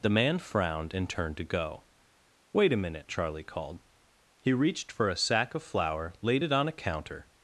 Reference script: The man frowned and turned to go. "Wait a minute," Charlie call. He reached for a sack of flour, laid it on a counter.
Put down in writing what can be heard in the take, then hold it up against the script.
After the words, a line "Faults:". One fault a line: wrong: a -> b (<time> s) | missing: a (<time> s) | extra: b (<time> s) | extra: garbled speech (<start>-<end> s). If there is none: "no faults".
The man frowned and turned to go. "Wait a minute," Charlie called. He reached for a sack of flour, laid it on a counter.
Faults:
wrong: call -> called (3.4 s)